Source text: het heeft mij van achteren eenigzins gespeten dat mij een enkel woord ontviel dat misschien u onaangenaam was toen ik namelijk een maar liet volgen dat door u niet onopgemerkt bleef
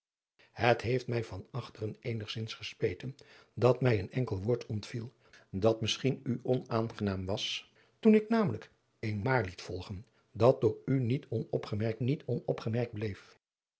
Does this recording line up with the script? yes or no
no